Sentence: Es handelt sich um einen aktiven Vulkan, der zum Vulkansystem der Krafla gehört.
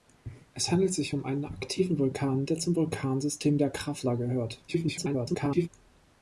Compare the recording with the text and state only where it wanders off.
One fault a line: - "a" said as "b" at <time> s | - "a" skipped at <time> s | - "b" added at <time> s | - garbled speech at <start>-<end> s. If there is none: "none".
- garbled speech at 4.7-5.7 s